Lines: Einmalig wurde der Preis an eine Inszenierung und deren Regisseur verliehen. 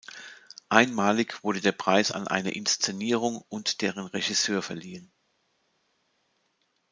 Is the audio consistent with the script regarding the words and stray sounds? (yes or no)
yes